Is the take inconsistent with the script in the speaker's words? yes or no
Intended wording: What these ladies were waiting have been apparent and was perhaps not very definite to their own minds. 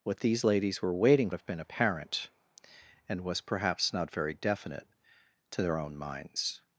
no